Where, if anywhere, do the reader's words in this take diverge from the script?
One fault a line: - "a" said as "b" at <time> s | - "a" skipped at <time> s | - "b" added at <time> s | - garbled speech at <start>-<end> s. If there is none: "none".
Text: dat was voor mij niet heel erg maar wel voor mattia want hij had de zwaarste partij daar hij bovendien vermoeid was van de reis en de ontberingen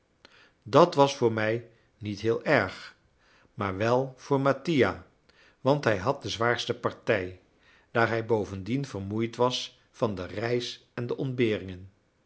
none